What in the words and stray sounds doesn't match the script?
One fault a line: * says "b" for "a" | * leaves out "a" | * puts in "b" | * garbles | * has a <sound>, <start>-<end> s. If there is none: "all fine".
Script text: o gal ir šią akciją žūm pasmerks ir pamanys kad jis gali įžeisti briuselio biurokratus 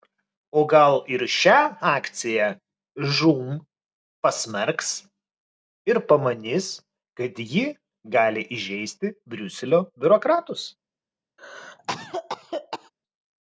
* says "ji" for "jis"
* has a cough, 11.4-12.9 s